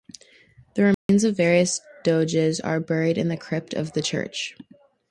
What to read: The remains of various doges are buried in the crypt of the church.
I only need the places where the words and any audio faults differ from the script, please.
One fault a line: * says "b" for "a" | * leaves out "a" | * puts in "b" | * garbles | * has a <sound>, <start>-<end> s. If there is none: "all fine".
* has a dropout, 0.9-1.1 s